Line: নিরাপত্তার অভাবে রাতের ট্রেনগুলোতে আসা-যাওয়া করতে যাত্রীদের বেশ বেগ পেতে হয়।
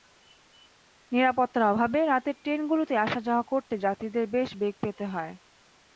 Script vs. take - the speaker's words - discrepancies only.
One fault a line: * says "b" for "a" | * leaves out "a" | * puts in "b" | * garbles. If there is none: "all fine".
all fine